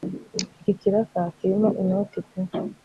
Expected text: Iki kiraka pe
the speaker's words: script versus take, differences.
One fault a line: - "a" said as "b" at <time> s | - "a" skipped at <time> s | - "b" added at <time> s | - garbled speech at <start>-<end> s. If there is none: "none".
- "kirimo inoti" added at 1.4 s